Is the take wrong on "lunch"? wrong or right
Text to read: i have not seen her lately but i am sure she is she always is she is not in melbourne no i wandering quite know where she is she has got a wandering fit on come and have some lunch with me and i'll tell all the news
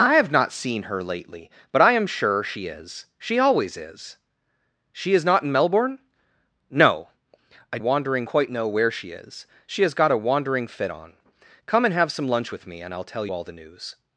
right